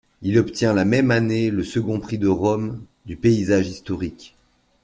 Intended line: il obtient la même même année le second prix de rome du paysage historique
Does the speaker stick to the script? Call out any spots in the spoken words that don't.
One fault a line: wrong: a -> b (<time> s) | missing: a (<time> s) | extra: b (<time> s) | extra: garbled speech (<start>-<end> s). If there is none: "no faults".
missing: même (1.1 s)